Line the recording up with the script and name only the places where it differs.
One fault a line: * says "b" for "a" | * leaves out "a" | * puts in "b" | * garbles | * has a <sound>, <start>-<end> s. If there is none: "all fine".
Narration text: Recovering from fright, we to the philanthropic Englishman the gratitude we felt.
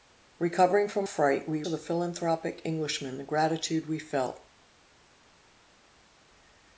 all fine